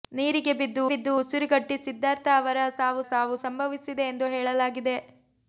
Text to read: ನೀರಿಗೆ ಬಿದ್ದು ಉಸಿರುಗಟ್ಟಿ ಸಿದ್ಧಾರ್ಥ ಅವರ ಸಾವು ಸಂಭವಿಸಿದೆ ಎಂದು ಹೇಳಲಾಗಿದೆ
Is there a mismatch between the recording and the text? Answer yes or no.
yes